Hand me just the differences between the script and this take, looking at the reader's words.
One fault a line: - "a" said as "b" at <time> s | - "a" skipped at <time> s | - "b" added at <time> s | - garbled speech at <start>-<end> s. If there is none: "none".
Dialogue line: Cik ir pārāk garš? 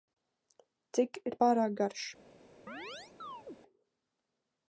none